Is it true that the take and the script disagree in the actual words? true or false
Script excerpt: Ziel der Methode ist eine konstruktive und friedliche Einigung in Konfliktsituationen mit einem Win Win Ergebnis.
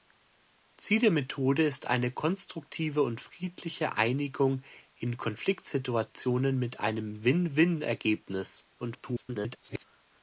true